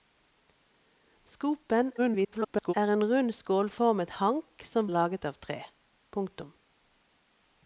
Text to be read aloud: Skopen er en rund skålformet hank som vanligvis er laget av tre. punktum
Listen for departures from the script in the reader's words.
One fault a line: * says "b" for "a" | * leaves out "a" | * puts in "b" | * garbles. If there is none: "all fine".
* garbles
* leaves out "vanligvis"